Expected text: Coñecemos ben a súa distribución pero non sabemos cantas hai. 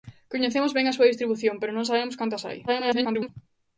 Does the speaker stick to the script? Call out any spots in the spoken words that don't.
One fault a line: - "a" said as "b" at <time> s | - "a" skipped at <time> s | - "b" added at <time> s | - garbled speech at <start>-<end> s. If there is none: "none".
- garbled speech at 2.7-3.3 s